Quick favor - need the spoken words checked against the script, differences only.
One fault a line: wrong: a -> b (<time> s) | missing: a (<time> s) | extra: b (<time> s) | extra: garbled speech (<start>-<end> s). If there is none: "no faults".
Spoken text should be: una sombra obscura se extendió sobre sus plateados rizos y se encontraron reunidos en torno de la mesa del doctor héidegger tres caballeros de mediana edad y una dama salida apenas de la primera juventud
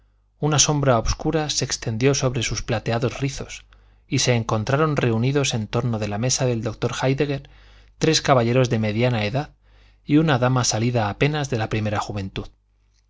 no faults